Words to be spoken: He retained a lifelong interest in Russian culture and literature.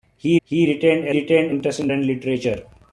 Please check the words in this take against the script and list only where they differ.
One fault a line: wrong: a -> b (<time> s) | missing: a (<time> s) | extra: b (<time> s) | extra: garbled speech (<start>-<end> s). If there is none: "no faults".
extra: he (0.4 s)
wrong: lifelong -> retained (1.1 s)
missing: Russian culture (1.9 s)